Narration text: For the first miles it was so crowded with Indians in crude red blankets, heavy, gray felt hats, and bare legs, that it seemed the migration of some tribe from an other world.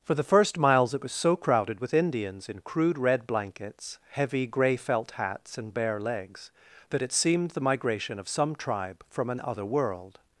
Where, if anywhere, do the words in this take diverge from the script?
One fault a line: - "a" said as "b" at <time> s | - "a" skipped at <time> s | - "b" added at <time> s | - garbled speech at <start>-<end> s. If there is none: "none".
none